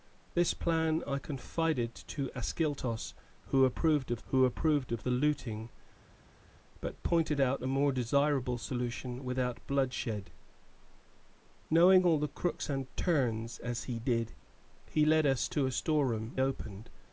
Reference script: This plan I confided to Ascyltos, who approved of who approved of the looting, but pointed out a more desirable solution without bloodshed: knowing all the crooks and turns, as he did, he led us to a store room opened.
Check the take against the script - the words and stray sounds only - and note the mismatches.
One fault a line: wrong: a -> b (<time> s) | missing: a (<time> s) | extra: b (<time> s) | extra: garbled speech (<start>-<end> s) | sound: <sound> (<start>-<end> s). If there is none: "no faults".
no faults